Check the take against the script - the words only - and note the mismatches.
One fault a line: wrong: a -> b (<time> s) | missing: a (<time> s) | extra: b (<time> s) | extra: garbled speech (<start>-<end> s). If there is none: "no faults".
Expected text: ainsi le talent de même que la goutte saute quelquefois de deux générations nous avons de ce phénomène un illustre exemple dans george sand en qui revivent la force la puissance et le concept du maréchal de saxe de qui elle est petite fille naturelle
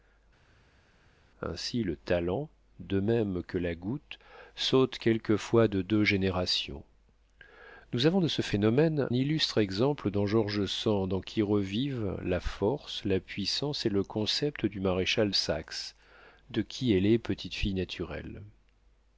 missing: un (9.1 s)
missing: de (15.3 s)